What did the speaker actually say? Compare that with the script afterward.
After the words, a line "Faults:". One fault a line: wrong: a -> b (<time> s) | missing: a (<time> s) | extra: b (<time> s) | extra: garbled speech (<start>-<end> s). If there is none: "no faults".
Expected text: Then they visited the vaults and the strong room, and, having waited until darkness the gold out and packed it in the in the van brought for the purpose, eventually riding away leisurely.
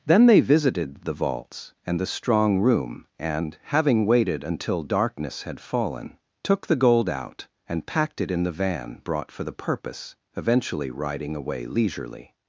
Then they visited the vaults and the strong room, and, having waited until darkness had fallen, took the gold out and packed it in the van brought for the purpose, eventually riding away leisurely.
Faults:
extra: had fallen took (5.4 s)
missing: in the (8.6 s)